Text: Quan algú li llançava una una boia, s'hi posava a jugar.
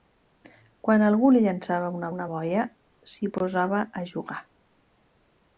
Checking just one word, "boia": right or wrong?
right